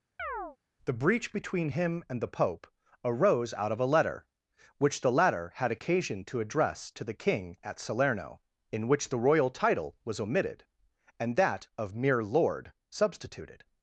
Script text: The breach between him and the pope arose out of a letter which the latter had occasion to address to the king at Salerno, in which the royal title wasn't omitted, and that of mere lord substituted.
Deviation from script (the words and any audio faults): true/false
true